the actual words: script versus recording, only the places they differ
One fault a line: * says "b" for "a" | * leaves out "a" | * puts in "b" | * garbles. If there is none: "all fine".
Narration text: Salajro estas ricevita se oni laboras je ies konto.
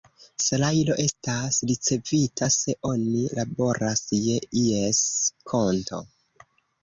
all fine